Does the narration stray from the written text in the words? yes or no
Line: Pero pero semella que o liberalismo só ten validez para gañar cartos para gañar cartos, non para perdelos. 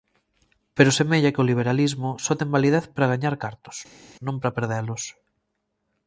yes